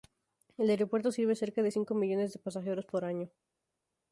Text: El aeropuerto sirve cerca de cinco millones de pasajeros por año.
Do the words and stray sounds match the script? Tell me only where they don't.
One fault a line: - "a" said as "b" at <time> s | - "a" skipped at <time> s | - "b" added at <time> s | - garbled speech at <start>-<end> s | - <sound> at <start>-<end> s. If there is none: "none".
none